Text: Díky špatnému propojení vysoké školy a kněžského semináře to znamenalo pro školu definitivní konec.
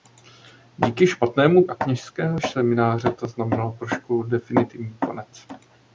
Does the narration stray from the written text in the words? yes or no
yes